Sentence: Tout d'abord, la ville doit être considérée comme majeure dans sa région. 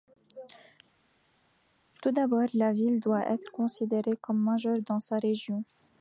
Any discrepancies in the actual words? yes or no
no